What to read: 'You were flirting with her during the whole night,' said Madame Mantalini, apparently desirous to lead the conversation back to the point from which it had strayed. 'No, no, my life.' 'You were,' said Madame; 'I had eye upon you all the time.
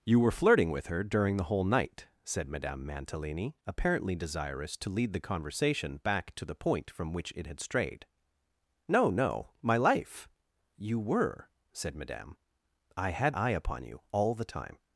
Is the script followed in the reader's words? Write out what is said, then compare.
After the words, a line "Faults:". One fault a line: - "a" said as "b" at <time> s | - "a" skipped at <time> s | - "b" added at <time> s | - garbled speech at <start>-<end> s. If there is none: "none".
'You were flirting with her during the whole night,' said Madame Mantalini, apparently desirous to lead the conversation back to the point from which it had strayed. 'No, no, my life.' 'You were,' said Madame; 'I had eye upon you all the time.
Faults:
none